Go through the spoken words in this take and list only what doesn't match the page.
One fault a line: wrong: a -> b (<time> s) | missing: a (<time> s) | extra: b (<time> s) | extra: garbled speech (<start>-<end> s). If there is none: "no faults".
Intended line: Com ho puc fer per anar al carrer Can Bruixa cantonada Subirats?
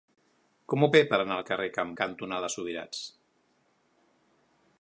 missing: puc (0.9 s)
missing: Bruixa (1.9 s)